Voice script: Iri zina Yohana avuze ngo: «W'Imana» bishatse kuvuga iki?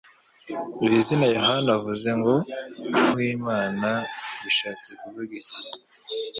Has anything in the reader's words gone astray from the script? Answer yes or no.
no